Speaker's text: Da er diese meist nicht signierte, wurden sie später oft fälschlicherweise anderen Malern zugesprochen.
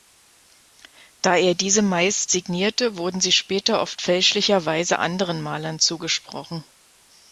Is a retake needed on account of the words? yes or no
yes